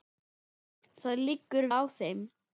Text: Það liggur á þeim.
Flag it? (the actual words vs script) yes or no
no